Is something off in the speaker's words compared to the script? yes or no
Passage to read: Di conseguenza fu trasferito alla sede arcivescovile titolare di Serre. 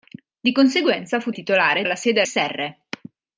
yes